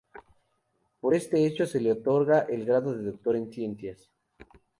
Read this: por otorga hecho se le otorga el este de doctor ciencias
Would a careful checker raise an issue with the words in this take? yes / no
yes